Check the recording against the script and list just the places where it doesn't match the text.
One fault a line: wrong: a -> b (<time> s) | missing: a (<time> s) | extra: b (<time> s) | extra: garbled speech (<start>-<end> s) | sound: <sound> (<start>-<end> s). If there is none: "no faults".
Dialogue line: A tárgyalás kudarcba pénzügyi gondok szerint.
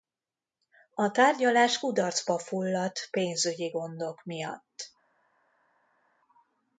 extra: fulladt (2.4 s)
wrong: szerint -> miatt (4.2 s)